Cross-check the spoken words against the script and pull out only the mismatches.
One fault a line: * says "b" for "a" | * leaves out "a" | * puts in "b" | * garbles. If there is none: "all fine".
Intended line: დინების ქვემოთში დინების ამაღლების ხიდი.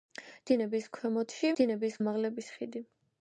all fine